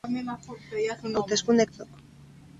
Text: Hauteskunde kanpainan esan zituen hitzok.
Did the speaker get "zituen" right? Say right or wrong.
wrong